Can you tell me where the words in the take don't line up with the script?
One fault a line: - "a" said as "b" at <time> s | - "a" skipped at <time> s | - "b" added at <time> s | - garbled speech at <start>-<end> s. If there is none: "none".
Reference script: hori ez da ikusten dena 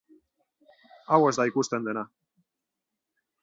- "hori" said as "hau" at 1.1 s